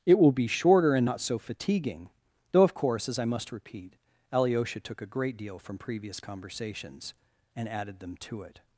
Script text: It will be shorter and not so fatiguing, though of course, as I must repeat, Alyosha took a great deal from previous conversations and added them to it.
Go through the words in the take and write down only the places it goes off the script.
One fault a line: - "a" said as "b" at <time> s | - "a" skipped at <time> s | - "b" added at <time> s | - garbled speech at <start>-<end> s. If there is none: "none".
none